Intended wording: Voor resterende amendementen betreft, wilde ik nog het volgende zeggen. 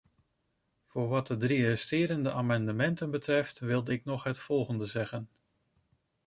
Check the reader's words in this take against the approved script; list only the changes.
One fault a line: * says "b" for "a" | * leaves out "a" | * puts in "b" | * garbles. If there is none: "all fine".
* puts in "wat de drie"